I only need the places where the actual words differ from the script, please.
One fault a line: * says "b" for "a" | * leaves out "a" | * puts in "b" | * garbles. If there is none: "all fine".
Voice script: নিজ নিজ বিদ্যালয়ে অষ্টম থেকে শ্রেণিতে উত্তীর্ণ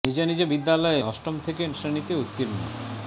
all fine